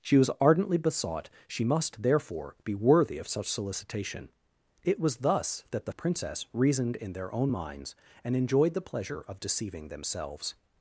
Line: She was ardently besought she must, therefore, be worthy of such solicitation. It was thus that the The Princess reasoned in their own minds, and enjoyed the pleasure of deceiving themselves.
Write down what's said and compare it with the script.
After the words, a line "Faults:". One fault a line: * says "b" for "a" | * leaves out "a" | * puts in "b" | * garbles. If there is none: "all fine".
She was ardently besought she must, therefore, be worthy of such solicitation. It was thus that the The Princess reasoned in their own minds, and enjoyed the pleasure of deceiving themselves.
Faults:
all fine